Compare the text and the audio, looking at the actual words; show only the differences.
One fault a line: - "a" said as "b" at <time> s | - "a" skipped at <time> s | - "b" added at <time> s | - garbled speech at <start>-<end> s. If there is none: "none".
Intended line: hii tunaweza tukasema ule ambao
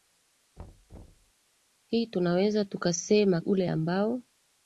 none